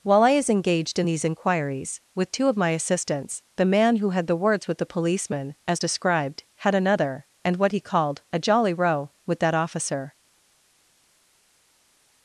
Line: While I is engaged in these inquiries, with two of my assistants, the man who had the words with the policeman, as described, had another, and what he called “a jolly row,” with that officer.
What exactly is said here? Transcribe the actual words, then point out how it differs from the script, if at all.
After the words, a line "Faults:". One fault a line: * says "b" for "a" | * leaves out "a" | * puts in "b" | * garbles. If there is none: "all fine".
While I is engaged in these inquiries, with two of my assistants, the man who had the words with the policeman, as described, had another, and what he called “a jolly row,” with that officer.
Faults:
all fine